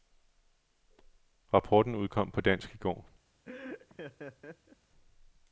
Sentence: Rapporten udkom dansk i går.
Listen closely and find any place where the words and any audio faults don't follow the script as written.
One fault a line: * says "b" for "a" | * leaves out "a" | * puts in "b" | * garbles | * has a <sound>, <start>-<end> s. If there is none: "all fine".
* puts in "på"
* has a laugh, 3.4-4.8 s